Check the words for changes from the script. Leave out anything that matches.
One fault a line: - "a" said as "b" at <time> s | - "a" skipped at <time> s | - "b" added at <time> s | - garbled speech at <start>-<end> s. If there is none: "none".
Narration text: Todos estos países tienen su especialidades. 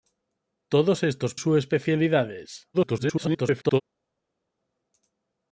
- "países tienen" skipped at 1.4 s
- garbled speech at 2.7-3.8 s